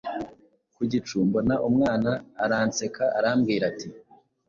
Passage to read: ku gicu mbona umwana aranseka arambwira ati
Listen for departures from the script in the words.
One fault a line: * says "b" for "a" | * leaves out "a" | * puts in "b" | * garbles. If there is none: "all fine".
all fine